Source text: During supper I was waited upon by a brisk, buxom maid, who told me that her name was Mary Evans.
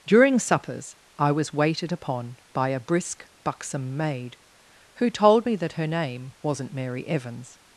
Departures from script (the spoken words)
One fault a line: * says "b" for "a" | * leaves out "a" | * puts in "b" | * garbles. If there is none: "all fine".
* says "suppers" for "supper"
* says "wasn't" for "was"